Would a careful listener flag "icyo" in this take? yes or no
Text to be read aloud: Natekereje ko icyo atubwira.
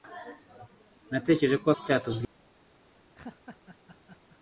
no